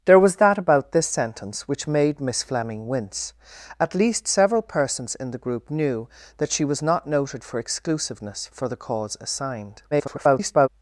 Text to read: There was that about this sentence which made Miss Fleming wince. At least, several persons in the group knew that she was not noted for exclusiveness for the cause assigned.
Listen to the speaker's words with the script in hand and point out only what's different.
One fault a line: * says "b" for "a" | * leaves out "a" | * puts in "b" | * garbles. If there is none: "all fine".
* garbles